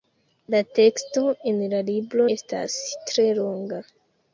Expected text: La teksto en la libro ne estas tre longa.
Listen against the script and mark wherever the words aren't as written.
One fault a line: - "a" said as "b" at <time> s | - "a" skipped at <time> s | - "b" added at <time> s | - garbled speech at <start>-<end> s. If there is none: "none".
- "ne" skipped at 2.2 s